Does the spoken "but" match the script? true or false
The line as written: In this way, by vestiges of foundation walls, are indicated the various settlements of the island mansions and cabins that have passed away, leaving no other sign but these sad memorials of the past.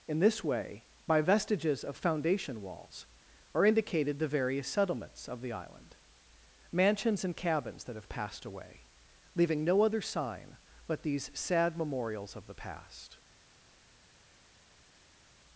true